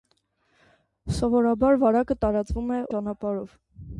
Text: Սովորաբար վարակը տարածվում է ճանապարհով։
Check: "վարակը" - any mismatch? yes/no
no